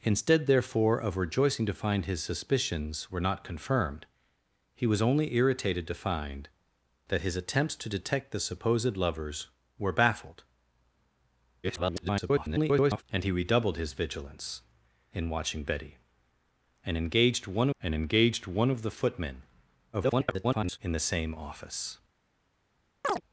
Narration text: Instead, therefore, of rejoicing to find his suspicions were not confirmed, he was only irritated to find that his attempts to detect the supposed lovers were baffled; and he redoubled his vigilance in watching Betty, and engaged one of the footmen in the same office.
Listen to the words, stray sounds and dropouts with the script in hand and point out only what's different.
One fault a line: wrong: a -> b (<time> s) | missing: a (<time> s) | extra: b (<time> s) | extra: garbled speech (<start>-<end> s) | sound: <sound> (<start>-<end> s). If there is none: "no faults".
extra: garbled speech (11.6-13.0 s)
extra: and engaged one (17.8 s)
extra: garbled speech (19.9-20.8 s)
sound: chirp (23.0-23.2 s)